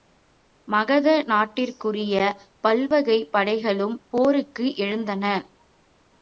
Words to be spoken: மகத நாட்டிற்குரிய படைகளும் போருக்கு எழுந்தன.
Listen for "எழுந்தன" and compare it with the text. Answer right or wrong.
right